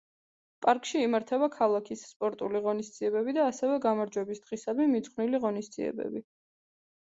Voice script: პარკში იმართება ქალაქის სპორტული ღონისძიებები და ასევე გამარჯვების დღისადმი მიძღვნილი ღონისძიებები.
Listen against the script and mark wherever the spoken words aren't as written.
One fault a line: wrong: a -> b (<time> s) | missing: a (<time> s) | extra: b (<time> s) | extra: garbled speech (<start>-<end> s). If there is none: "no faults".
no faults